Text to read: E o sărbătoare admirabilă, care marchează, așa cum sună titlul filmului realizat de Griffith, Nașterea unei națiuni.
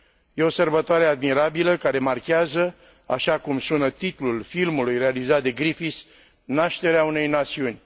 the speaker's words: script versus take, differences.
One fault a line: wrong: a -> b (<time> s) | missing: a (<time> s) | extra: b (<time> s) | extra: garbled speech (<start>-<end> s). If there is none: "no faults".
no faults